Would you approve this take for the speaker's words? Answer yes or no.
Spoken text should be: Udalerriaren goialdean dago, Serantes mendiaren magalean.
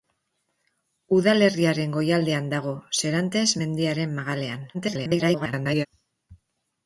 no